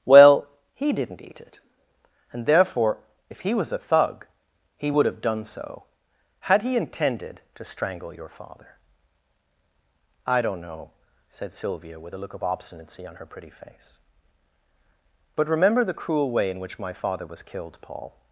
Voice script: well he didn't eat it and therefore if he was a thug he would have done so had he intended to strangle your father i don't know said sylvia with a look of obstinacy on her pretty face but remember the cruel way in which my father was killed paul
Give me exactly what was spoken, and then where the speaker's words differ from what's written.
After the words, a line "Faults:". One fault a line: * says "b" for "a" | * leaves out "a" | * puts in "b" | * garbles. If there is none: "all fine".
well he didn't eat it and therefore if he was a thug he would have done so had he intended to strangle your father i don't know said sylvia with a look of obstinacy on her pretty face but remember the cruel way in which my father was killed paul
Faults:
all fine